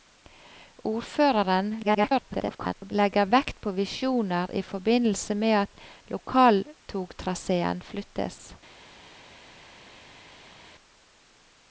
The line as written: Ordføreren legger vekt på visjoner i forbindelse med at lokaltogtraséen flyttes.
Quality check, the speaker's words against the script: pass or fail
fail